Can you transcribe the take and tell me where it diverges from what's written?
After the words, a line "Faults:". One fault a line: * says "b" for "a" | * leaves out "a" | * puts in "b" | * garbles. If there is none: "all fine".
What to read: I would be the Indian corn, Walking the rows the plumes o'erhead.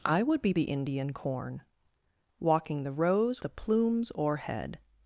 I would be the Indian corn, Walking the rows the plumes o'erhead.
Faults:
all fine